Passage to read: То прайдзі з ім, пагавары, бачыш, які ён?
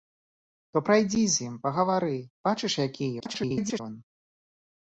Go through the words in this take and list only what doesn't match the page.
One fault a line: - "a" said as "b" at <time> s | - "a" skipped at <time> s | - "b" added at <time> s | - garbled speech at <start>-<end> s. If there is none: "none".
- garbled speech at 3.2-3.8 s